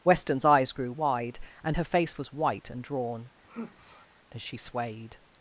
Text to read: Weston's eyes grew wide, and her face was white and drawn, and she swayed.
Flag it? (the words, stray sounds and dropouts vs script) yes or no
yes